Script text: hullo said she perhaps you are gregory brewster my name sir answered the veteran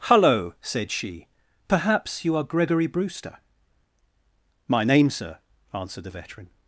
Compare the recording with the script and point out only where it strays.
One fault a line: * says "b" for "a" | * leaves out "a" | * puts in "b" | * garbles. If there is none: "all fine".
all fine